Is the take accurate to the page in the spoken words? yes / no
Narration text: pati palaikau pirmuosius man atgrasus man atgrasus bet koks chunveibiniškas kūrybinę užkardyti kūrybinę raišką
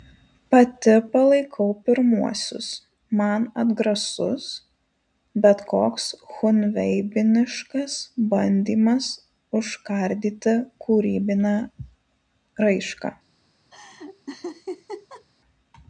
no